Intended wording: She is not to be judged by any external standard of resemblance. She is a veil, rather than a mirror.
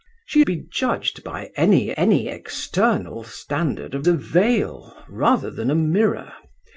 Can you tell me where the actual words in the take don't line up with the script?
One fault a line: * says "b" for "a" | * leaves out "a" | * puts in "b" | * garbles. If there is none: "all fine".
* leaves out "is not to"
* puts in "any"
* leaves out "resemblance She is"